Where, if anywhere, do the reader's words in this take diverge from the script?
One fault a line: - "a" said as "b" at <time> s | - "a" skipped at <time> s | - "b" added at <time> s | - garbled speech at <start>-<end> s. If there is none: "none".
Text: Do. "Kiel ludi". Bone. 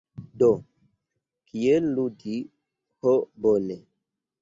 - "Ho" added at 3.0 s